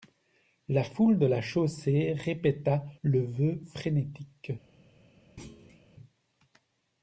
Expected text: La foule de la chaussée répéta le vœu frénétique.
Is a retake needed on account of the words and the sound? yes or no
yes